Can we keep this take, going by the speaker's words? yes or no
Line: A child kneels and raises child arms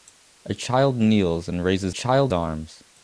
yes